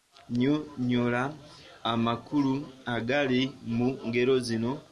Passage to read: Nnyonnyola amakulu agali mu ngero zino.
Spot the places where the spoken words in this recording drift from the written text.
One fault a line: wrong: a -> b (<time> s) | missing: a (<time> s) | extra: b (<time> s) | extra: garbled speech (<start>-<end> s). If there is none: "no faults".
no faults